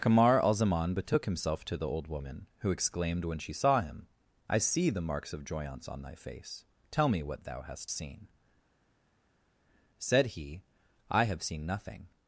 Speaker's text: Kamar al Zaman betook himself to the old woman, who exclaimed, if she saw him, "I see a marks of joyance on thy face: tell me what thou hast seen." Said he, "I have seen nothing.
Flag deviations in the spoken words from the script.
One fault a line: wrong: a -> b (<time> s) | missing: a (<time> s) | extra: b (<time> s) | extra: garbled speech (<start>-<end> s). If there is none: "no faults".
wrong: if -> when (3.2 s)
wrong: a -> the (4.9 s)